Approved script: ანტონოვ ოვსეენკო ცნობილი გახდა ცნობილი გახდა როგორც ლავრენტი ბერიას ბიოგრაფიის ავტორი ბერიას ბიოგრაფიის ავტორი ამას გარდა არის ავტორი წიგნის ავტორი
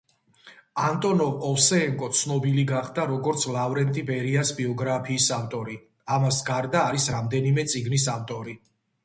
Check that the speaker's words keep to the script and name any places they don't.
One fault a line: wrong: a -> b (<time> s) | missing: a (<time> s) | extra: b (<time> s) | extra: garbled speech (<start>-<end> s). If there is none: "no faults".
missing: ცნობილი გახდა (3.0 s)
missing: ბერიას ბიოგრაფიის ავტორი (5.8 s)
wrong: ავტორი -> რამდენიმე (7.2 s)